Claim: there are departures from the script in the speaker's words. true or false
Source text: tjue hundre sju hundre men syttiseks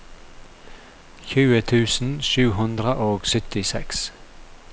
true